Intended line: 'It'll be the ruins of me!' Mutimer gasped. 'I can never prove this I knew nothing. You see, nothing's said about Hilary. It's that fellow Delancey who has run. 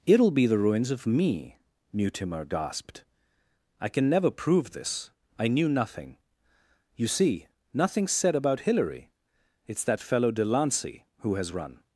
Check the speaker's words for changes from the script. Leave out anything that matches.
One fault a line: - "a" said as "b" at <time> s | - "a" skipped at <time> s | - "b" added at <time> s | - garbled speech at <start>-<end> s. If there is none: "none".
none